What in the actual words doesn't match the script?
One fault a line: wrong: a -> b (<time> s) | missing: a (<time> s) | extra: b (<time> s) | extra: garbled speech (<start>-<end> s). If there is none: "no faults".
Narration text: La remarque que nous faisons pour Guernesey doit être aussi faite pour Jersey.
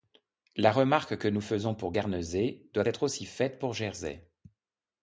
no faults